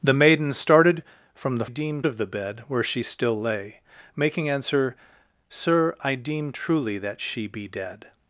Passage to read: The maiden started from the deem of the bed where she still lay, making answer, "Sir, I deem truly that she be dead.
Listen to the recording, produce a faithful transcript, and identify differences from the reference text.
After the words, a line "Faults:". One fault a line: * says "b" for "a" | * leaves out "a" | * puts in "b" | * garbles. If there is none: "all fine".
The maiden started from the deem of the bed where she still lay, making answer, "Sir, I deem truly that she be dead.
Faults:
all fine